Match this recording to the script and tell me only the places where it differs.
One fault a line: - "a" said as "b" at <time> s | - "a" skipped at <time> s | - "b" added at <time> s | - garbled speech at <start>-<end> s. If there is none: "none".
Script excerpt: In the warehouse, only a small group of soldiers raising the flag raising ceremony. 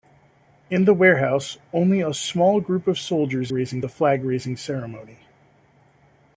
none